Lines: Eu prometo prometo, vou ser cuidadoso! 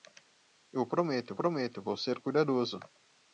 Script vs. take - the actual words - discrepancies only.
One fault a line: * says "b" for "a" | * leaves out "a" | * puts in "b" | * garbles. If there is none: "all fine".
all fine